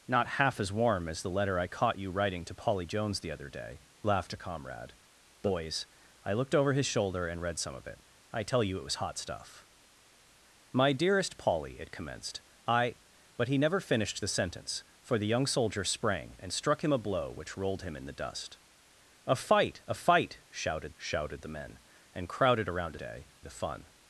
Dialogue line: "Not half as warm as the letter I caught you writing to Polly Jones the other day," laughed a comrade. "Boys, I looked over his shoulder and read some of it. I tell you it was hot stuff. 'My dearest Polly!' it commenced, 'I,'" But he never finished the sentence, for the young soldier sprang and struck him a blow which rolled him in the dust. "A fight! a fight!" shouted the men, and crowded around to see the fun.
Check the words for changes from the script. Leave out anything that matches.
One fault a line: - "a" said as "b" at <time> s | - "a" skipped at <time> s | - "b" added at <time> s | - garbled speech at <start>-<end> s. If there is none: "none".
- "shouted" added at 20.9 s
- "see" said as "day" at 22.9 s